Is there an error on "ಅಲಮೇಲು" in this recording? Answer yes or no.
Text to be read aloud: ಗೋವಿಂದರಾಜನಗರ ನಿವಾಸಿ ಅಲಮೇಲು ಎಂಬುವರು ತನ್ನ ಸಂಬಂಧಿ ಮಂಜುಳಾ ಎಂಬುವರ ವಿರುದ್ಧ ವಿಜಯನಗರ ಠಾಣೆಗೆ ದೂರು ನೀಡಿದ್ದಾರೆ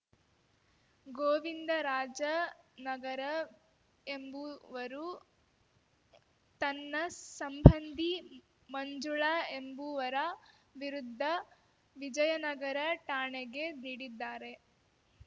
yes